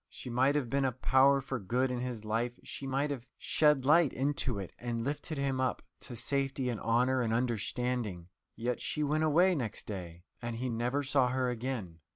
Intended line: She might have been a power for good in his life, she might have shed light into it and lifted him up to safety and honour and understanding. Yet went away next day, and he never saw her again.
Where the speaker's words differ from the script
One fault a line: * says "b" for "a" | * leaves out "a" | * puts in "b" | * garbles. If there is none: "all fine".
* puts in "she"